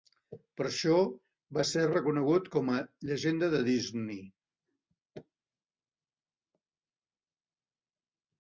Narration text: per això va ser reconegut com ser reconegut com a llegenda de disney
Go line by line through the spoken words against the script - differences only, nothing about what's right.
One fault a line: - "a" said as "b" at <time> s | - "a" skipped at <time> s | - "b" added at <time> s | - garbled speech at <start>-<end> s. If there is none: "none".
- "ser reconegut com" skipped at 2.7 s